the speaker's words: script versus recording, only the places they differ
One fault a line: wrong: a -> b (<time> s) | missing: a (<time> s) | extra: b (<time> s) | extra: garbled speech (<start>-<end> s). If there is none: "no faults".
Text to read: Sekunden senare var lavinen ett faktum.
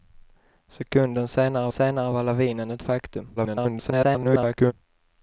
extra: senare (1.7 s)
extra: garbled speech (3.4-4.7 s)